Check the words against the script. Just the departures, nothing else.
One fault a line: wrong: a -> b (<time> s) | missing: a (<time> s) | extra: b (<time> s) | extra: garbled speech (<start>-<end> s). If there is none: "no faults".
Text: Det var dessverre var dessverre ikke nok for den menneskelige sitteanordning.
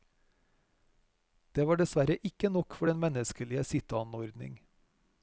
missing: var dessverre (2.2 s)